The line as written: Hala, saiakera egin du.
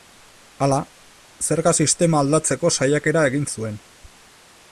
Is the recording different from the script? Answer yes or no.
yes